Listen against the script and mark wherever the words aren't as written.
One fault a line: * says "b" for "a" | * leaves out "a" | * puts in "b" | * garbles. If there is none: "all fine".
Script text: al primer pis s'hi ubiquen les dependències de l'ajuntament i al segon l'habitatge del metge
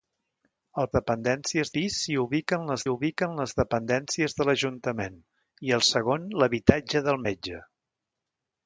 * says "dependències" for "primer"
* puts in "ubiquen les"